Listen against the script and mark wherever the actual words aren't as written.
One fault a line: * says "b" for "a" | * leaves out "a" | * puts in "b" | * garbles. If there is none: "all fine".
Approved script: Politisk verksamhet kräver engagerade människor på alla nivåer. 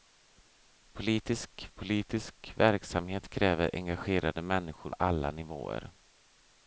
* puts in "politisk"
* leaves out "på"